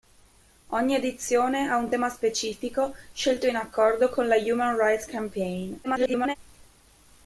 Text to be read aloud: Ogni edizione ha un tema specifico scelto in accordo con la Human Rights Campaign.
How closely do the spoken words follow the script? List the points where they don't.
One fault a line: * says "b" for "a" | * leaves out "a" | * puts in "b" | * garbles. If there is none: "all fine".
* garbles